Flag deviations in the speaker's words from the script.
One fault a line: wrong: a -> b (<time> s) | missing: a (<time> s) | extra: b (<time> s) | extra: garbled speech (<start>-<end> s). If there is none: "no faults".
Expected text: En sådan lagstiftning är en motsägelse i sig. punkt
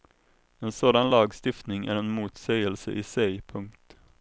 no faults